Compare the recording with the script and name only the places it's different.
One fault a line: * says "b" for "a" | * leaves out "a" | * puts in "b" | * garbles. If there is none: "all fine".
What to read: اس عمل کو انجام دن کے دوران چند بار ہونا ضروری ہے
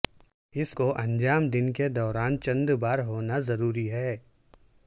* leaves out "عمل"